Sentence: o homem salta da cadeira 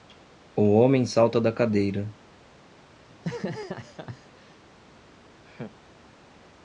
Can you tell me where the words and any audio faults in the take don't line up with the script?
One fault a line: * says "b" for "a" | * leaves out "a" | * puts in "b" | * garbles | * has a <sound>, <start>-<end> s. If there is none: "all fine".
* has a laugh, 3.1-4.6 s
* has a laugh, 5.4-5.8 s